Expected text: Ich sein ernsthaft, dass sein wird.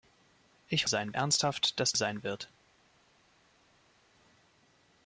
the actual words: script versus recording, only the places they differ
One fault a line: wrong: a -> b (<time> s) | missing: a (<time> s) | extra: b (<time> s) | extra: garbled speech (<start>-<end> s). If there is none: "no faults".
no faults